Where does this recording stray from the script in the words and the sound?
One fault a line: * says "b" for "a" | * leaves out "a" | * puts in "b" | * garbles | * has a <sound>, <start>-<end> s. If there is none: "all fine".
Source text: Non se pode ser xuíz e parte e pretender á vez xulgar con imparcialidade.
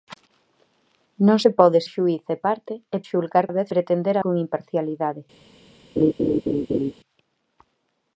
* leaves out "ser"
* says "xulgar" for "pretender"
* says "pretender" for "xulgar"
* has a laugh, 6.0-6.9 s